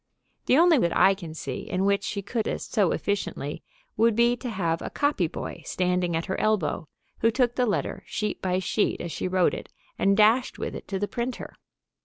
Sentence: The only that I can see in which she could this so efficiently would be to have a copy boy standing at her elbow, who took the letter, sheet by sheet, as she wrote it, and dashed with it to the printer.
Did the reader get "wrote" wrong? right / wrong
right